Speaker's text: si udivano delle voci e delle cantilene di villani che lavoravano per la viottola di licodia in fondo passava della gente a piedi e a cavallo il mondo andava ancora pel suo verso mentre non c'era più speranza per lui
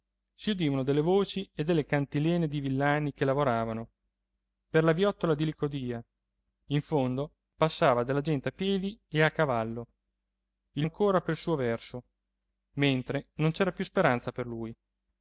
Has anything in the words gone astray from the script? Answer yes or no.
yes